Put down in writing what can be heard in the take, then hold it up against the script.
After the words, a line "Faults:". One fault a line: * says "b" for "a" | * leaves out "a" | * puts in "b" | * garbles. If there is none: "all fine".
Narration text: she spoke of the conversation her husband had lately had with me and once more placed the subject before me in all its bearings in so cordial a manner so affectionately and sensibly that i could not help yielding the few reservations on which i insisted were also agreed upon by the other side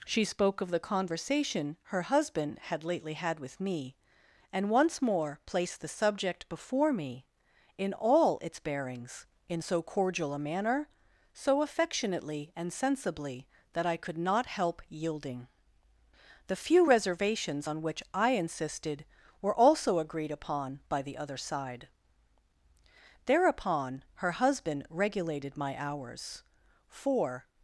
she spoke of the conversation her husband had lately had with me and once more placed the subject before me in all its bearings in so cordial a manner so affectionately and sensibly that i could not help yielding the few reservations on which i insisted were also agreed upon by the other side thereupon her husband regulated my hours for
Faults:
* puts in "thereupon her husband regulated my hours for"